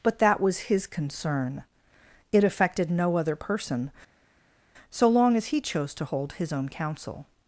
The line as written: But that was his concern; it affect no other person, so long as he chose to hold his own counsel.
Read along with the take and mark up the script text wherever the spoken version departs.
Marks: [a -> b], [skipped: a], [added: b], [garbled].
But that was his concern; it [affect -> affected] no other person, so long as he chose to hold his own counsel.